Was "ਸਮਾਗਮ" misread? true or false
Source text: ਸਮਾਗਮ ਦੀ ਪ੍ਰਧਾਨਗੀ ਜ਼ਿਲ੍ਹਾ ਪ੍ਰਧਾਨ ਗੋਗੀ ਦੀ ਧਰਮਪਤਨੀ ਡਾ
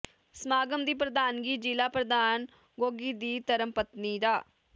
false